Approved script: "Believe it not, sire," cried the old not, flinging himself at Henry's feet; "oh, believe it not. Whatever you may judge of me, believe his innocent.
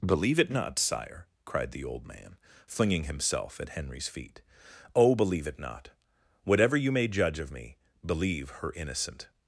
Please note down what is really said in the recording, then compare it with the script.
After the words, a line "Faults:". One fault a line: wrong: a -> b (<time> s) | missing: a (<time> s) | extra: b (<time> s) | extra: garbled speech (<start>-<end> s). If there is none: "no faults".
"Believe it not, sire," cried the old man, flinging himself at Henry's feet; "oh, believe it not. Whatever you may judge of me, believe her innocent.
Faults:
wrong: not -> man (2.1 s)
wrong: his -> her (8.5 s)